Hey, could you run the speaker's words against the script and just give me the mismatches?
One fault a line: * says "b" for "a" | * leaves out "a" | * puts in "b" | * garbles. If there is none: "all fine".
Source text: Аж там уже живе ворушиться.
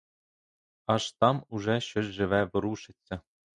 * puts in "щось"